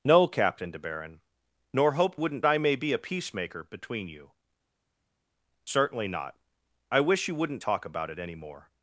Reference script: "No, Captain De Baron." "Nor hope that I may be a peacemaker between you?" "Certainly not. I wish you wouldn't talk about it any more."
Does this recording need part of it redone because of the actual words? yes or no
yes